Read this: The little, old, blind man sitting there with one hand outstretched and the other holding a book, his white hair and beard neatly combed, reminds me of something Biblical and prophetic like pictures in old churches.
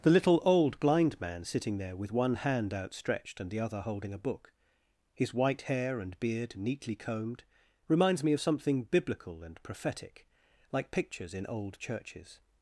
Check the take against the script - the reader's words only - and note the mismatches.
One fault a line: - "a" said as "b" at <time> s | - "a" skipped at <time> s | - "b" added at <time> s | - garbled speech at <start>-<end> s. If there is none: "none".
none